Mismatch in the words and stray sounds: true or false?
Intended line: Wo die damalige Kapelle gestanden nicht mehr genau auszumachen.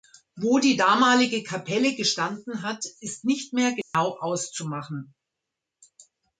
true